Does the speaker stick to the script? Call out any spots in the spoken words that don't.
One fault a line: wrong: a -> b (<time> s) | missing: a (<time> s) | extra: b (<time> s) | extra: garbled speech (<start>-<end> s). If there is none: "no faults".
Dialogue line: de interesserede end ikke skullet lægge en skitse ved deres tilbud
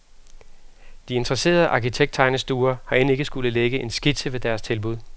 extra: arkitekttegnestuer har (1.7 s)